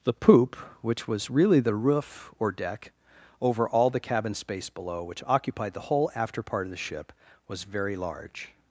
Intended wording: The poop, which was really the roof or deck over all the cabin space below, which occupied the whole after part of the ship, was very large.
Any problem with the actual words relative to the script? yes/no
no